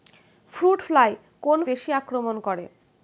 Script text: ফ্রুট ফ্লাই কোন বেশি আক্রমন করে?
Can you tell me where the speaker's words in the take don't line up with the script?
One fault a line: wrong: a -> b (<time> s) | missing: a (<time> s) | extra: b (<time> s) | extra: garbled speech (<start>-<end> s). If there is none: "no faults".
no faults